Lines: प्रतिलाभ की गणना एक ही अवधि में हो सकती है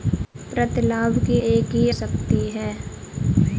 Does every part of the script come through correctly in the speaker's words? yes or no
no